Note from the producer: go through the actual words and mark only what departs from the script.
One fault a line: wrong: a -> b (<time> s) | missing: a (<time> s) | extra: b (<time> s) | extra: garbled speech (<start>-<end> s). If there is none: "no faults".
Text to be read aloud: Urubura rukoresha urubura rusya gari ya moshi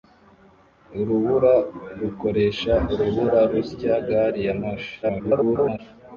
extra: garbled speech (5.0-5.8 s)